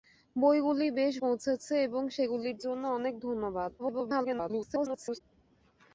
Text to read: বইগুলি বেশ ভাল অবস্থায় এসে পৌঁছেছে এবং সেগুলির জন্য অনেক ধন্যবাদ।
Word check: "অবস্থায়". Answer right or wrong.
wrong